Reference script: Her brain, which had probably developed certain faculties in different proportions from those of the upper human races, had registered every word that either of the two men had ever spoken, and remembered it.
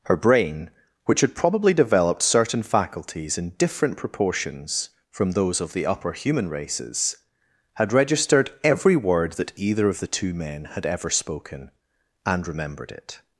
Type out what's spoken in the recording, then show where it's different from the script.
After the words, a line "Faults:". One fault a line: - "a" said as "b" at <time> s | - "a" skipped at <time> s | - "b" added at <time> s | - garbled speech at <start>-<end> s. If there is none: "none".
Her brain, which had probably developed certain faculties in different proportions from those of the upper human races, had registered every word that either of the two men had ever spoken, and remembered it.
Faults:
none